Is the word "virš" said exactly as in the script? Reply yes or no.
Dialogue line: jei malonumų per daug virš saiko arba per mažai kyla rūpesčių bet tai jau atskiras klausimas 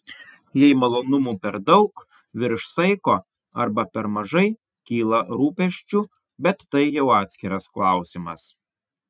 yes